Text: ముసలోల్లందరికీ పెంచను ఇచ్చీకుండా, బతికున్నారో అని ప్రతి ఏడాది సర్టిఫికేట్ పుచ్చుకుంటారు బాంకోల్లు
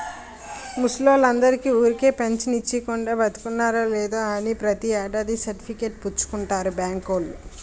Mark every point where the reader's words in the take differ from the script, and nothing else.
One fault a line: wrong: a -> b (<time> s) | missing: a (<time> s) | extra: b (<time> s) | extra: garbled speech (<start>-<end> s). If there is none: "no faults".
extra: ఊరికే (1.8 s)
extra: లేదో (3.9 s)